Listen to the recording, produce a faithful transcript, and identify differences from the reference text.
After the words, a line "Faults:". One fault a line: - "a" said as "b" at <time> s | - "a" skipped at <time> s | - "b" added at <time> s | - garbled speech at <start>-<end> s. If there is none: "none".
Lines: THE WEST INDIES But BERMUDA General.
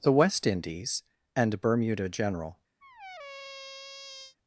THE WEST INDIES AND BERMUDA General.
Faults:
- "But" said as "AND" at 1.4 s